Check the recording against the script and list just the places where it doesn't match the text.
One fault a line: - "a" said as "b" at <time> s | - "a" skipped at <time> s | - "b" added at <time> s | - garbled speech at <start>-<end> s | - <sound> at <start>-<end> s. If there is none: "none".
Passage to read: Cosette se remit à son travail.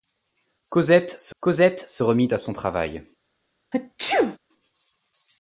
- "cosette se" added at 1.4 s
- sneeze at 3.7-4.4 s